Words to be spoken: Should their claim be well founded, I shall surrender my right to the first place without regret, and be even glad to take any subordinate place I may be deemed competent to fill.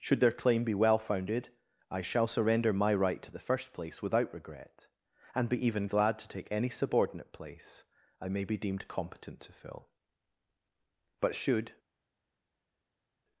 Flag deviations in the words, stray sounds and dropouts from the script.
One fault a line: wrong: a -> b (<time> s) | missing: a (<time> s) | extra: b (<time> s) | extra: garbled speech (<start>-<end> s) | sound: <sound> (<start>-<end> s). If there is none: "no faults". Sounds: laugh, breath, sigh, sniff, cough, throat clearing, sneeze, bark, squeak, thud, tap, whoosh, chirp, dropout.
extra: But should (11.2 s)